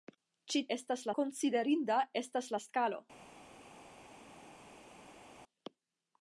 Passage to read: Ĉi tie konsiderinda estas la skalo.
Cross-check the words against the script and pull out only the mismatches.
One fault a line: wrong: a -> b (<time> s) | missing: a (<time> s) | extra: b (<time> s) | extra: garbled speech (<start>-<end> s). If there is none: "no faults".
wrong: tie -> estas (0.8 s)